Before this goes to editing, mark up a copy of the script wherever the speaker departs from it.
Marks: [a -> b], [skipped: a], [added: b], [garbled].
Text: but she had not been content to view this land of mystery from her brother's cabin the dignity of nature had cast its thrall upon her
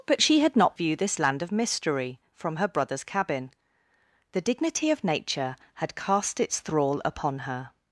but she had not [skipped: been content to] view this land of mystery from her brother's cabin the dignity of nature had cast its thrall upon her